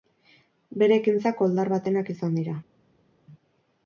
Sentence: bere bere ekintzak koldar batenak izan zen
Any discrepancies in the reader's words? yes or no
yes